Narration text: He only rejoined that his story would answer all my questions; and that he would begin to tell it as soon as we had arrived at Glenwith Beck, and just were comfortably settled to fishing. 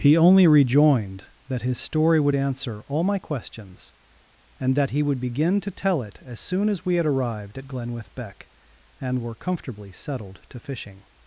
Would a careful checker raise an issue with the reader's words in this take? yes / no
yes